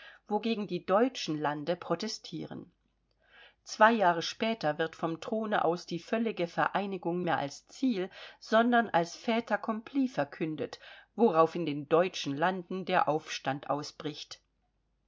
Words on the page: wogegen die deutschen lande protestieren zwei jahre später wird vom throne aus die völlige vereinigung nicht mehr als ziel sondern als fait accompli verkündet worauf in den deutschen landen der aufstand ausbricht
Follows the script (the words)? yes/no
no